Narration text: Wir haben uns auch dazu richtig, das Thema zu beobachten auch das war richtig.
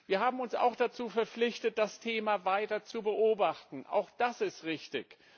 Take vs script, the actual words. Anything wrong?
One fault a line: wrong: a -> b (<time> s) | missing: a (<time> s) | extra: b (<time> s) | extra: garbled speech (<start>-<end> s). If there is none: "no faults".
wrong: richtig -> verpflichtet (1.1 s)
extra: weiter (2.5 s)
wrong: war -> ist (4.4 s)